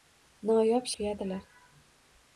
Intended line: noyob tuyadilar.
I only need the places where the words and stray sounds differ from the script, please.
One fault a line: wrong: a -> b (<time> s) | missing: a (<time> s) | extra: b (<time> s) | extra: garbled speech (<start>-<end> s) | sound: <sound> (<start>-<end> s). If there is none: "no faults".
no faults